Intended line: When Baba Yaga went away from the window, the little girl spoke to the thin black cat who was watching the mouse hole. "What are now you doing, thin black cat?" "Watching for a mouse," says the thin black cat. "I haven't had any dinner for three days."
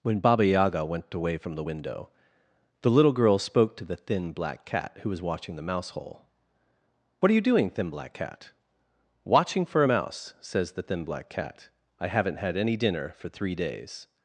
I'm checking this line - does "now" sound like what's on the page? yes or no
no